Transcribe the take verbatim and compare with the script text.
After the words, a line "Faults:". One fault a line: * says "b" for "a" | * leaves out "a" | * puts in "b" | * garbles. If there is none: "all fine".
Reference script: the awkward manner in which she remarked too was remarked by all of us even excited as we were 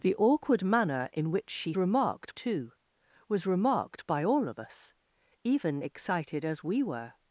the awkward manner in which she remarked too was remarked by all of us even excited as we were
Faults:
all fine